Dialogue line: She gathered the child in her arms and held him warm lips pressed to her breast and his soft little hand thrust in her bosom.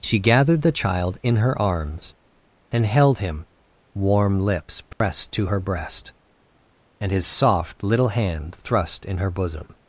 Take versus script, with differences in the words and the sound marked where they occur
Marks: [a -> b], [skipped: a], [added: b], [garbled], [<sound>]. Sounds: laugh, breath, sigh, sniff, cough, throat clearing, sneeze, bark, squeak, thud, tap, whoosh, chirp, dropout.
She gathered the child in her arms and held him warm lips pressed [dropout] to her breast and his soft little hand thrust in her bosom.